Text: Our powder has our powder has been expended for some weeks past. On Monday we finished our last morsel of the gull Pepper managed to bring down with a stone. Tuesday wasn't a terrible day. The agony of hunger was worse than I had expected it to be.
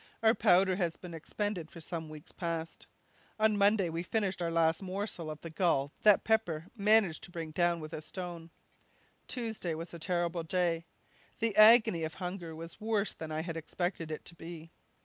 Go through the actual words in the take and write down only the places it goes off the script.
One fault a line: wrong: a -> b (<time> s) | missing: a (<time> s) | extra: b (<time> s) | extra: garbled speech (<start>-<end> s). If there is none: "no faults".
missing: our powder has (1.0 s)
extra: that (6.0 s)
wrong: wasn't -> was (9.7 s)